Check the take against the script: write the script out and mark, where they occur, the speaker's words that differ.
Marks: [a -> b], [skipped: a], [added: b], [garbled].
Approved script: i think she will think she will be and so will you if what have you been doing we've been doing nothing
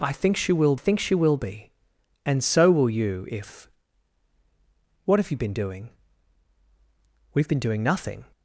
i think she will think she will be and so will you if what have you been doing we've been doing nothing